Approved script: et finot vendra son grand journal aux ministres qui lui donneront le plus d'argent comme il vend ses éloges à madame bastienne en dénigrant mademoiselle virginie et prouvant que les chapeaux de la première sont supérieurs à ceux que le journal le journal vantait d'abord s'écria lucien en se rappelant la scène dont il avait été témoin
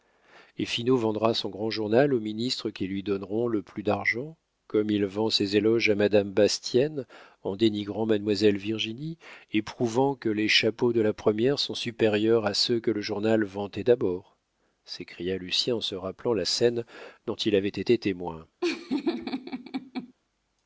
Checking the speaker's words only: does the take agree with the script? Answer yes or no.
no